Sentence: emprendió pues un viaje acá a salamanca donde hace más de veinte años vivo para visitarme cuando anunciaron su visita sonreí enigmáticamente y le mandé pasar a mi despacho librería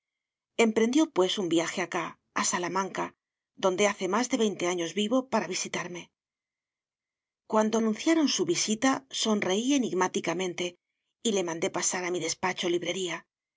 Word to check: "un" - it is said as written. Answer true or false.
true